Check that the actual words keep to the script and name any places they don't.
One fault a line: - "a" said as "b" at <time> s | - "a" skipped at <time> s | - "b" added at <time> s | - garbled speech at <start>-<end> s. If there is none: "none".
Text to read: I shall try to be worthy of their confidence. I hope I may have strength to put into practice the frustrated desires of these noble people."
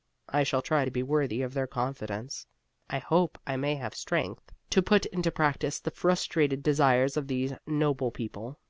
none